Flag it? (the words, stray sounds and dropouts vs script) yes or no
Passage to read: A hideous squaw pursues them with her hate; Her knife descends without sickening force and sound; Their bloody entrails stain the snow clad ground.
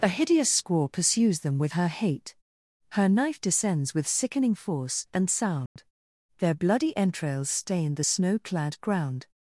yes